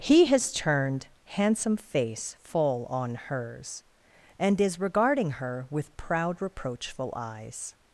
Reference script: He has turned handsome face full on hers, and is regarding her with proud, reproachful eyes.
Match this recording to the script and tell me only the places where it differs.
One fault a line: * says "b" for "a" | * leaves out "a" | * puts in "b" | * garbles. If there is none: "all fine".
all fine